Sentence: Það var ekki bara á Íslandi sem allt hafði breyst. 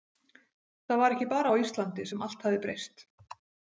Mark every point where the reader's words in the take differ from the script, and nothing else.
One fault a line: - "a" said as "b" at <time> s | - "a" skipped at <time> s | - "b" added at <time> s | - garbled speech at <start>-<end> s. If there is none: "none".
none